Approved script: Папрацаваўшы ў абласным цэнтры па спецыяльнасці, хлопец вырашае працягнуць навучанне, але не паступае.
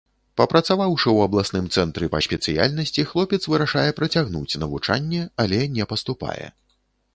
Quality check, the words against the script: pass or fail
pass